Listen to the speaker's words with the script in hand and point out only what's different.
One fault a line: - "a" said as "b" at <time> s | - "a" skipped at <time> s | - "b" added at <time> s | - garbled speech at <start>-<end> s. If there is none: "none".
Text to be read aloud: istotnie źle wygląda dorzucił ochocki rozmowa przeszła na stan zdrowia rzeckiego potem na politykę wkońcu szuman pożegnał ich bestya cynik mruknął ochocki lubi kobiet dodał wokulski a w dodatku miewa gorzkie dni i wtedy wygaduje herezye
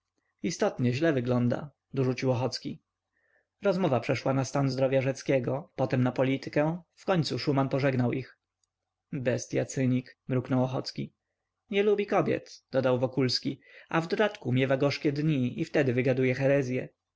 - "nie" added at 11.7 s